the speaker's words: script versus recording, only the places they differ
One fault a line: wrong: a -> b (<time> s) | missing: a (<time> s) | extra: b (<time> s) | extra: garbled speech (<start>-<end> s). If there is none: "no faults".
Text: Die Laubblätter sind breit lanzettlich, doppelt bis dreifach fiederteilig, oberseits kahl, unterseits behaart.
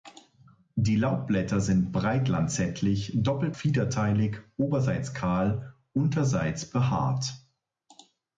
missing: bis dreifach (3.5 s)